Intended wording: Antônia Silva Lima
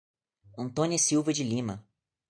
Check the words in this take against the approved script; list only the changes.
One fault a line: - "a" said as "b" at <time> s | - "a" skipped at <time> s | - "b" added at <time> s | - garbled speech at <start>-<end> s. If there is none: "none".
- "de" added at 1.3 s